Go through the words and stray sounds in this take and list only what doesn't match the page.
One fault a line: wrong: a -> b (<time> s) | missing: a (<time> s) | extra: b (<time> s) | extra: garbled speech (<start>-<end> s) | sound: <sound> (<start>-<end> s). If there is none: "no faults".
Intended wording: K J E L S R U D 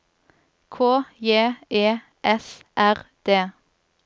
missing: L (2.0 s)
missing: U (3.1 s)